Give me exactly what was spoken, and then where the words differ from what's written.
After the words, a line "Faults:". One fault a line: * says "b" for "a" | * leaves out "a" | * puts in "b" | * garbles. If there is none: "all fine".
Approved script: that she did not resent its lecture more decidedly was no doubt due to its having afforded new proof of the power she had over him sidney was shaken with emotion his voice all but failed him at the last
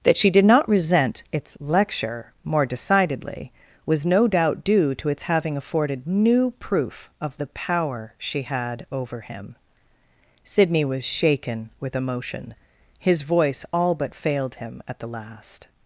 that she did not resent its lecture more decidedly was no doubt due to its having afforded new proof of the power she had over him sidney was shaken with emotion his voice all but failed him at the last
Faults:
all fine